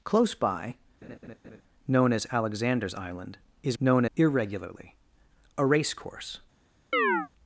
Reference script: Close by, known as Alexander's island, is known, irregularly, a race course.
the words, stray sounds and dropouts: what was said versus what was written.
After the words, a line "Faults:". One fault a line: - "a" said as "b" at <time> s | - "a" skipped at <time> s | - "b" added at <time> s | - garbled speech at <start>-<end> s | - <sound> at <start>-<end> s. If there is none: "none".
Close by, known as Alexander's island, is known, irregularly, a race course.
Faults:
- laugh at 1.0-1.6 s
- chirp at 6.9-7.3 s